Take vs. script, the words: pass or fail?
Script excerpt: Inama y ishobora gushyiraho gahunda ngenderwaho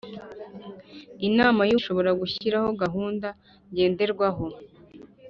pass